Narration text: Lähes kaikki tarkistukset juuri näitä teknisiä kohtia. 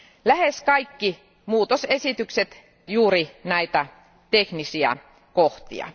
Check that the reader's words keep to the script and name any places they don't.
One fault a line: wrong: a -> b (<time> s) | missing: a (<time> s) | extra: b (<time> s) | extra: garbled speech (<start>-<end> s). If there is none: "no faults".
no faults